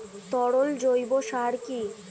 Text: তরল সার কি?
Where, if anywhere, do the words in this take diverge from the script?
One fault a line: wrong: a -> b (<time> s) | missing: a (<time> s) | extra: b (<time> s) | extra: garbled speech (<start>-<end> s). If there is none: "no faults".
extra: জৈব (0.8 s)